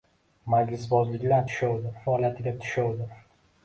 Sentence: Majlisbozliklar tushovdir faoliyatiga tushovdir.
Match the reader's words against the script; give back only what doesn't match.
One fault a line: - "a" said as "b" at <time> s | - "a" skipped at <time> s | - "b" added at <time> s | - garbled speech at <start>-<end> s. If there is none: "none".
none